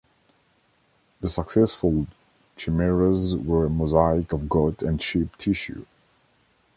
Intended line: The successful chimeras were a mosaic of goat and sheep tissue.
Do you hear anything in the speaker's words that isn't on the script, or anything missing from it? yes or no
no